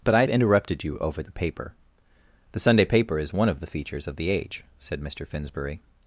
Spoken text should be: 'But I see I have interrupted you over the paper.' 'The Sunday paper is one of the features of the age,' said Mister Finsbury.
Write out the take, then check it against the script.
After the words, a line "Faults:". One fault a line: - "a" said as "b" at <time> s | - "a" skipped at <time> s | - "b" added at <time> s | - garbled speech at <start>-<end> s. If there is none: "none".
'But I interrupted you over the paper.' 'The Sunday paper is one of the features of the age,' said Mister Finsbury.
Faults:
- "see I have" skipped at 0.2 s